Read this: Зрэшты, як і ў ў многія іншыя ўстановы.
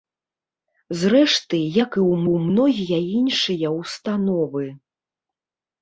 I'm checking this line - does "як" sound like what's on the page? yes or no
yes